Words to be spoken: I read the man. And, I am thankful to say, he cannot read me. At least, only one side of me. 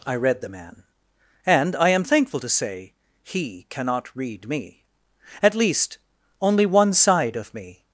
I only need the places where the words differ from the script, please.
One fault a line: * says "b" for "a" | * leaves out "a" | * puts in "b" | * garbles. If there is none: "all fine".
all fine